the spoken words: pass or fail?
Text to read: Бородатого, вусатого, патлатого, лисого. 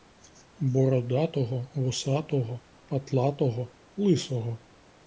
pass